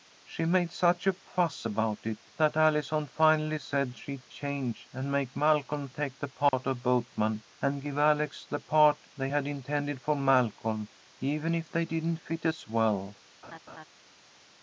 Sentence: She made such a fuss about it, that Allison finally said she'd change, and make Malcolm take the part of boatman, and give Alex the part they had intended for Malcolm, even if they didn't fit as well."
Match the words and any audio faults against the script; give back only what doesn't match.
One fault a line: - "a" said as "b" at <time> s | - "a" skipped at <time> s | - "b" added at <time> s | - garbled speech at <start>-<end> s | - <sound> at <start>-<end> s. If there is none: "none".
- dropout at 6.5-6.5 s
- laugh at 13.4-13.8 s